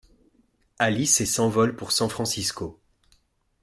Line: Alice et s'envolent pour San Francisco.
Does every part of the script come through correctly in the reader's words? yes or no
yes